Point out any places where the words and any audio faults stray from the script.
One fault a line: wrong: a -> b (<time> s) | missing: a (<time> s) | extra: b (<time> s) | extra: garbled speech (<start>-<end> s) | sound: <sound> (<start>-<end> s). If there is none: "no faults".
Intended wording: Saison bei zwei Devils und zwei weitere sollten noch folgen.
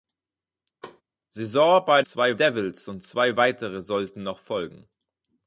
sound: thud (0.8-1.0 s)